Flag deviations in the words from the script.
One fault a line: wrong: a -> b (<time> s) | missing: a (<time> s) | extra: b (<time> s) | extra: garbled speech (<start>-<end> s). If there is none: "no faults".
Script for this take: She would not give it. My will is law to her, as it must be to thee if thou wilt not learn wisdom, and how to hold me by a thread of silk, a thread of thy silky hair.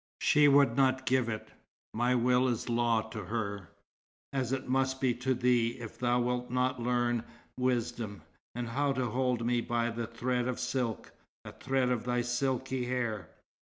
no faults